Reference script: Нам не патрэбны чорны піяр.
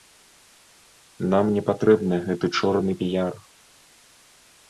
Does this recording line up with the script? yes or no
no